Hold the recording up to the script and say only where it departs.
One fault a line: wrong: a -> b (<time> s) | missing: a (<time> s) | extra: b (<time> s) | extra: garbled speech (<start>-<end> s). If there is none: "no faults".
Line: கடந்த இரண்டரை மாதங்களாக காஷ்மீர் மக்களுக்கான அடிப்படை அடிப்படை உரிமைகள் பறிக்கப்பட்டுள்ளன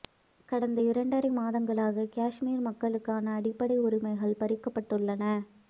missing: அடிப்படை (3.8 s)